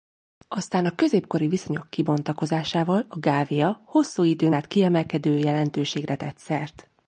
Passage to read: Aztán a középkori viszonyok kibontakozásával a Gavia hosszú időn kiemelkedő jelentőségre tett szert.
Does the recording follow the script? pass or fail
fail